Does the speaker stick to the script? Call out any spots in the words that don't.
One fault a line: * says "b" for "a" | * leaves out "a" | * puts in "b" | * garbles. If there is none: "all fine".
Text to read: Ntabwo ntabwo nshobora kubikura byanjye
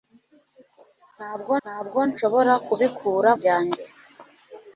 all fine